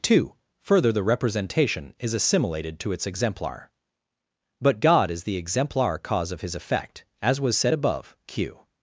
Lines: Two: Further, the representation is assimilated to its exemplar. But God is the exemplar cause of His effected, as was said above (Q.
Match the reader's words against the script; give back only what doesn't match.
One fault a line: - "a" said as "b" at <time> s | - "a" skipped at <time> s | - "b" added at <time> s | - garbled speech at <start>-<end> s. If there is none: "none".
- "effected" said as "effect" at 6.5 s